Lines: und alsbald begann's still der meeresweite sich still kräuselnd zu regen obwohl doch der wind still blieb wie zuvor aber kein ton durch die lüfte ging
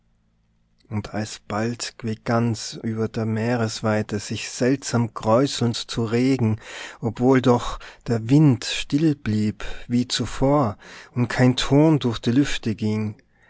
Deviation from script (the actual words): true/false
true